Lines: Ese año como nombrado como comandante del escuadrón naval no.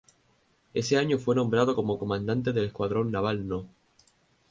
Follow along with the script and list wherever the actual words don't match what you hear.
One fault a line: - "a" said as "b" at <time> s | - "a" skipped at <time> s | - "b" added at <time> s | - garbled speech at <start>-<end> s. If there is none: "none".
- "como" said as "fue" at 1.2 s